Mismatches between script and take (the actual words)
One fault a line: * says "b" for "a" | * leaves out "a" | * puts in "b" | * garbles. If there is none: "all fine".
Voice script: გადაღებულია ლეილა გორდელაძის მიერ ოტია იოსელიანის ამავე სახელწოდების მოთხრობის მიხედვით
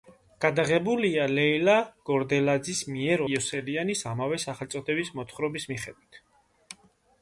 * leaves out "ოტია"